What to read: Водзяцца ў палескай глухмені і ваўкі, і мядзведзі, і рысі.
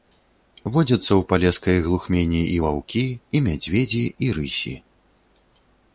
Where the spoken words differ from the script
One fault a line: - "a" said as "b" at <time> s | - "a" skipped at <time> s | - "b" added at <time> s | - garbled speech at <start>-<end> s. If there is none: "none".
none